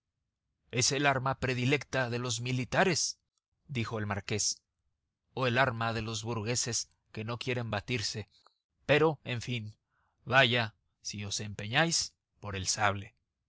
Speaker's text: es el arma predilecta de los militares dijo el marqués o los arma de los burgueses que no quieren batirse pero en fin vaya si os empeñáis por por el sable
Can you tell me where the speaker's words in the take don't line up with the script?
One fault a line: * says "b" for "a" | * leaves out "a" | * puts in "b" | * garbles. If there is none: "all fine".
* says "el" for "los"
* leaves out "por"